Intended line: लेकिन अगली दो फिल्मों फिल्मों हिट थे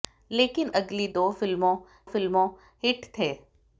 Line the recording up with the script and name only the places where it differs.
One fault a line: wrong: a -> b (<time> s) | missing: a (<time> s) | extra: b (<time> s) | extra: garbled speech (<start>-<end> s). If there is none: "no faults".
no faults